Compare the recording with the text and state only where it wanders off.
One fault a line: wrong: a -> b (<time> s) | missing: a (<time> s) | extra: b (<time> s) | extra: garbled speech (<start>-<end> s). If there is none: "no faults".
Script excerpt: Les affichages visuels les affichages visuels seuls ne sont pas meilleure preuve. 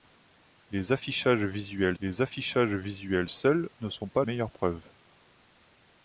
no faults